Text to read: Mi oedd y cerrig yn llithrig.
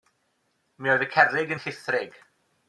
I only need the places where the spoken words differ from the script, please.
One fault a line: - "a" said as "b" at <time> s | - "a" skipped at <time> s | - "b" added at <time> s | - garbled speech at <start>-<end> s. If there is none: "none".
none